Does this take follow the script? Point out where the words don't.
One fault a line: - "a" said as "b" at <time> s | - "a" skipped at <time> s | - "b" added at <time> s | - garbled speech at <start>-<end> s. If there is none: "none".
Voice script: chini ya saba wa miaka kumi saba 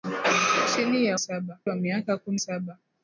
none